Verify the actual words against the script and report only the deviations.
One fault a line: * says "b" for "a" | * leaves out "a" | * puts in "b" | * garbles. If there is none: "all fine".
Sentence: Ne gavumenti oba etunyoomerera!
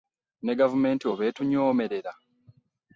all fine